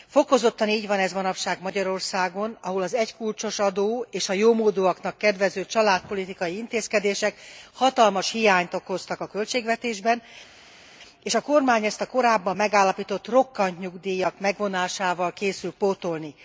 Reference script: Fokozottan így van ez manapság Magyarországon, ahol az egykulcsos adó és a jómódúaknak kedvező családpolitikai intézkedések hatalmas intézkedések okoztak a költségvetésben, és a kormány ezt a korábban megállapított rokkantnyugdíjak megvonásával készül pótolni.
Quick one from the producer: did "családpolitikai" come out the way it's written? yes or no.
yes